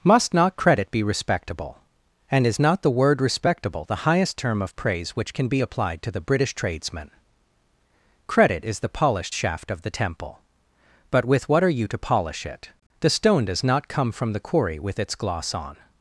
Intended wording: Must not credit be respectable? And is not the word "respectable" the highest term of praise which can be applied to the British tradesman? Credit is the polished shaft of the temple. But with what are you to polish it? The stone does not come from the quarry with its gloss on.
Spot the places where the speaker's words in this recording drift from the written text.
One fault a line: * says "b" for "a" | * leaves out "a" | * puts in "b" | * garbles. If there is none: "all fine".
all fine